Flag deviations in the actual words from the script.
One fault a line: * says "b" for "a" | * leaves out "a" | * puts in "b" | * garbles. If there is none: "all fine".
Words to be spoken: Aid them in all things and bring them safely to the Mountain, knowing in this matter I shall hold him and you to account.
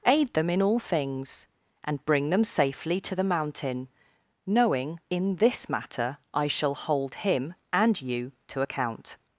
all fine